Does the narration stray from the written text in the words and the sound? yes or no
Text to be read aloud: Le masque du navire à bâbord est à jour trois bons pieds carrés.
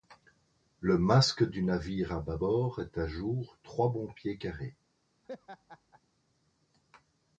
yes